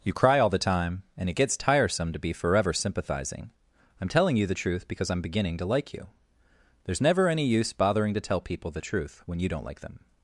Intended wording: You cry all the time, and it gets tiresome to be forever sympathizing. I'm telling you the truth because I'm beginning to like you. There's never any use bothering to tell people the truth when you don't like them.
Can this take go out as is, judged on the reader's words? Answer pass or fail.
pass